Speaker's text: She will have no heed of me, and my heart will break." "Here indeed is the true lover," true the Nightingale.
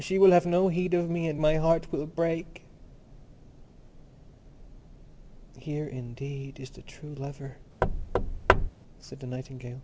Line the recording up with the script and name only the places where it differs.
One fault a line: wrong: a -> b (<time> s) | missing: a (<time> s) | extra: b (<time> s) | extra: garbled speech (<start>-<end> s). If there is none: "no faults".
wrong: true -> said (9.0 s)